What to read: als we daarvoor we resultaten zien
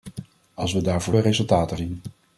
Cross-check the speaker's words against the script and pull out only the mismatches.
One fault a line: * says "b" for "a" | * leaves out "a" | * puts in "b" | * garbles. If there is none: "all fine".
all fine